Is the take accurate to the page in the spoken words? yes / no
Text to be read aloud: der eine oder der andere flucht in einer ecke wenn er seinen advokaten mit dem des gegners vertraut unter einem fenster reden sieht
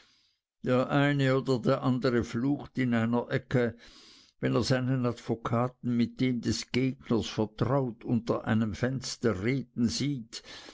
yes